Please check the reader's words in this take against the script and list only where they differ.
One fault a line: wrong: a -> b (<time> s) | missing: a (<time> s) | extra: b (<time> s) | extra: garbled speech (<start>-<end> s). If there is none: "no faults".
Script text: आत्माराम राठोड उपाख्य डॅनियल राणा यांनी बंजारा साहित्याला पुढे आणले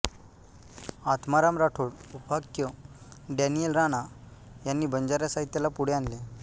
no faults